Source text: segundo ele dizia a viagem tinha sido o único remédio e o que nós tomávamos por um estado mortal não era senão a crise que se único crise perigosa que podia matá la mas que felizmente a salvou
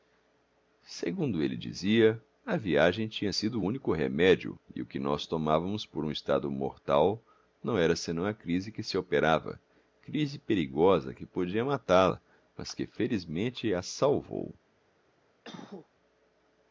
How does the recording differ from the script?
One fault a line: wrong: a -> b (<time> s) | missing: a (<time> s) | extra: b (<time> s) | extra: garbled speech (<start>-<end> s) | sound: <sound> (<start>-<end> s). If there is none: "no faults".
wrong: único -> operava (8.9 s)
sound: cough (15.4-15.9 s)